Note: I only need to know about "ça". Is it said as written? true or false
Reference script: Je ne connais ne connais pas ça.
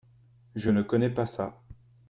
true